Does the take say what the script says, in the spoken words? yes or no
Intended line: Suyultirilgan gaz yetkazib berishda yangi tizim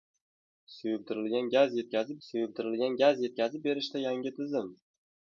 no